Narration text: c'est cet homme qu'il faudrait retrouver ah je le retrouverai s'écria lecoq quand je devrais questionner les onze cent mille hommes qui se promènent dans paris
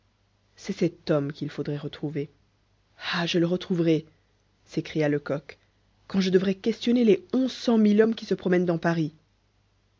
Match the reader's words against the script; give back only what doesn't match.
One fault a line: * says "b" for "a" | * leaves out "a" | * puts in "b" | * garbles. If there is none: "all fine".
all fine